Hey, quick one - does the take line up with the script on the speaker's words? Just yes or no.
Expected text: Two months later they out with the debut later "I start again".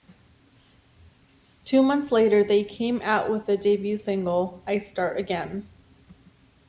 no